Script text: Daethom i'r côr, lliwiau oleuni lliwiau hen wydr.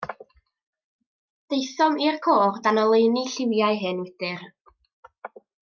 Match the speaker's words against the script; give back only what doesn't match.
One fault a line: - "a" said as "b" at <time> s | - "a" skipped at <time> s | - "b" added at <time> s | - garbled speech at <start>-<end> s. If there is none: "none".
- "lliwiau" said as "dan" at 2.7 s